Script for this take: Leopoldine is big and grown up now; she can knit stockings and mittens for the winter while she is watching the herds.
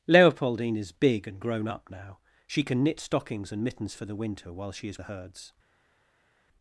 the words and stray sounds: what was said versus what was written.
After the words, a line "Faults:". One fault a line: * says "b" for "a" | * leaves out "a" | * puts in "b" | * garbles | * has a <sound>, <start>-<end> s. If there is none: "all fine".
Leopoldine is big and grown up now; she can knit stockings and mittens for the winter while she is the herds.
Faults:
* leaves out "watching"